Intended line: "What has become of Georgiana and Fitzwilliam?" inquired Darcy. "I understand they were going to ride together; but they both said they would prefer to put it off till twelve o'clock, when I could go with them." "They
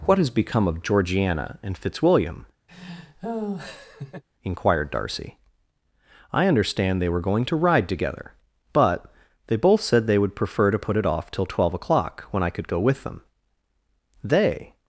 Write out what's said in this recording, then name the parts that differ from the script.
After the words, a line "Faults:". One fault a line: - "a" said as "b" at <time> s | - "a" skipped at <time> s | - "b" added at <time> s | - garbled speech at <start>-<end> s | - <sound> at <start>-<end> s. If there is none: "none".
"What has become of Georgiana and Fitzwilliam?" inquired Darcy. "I understand they were going to ride together; but they both said they would prefer to put it off till twelve o'clock, when I could go with them." "They
Faults:
- laugh at 2.7-4.2 s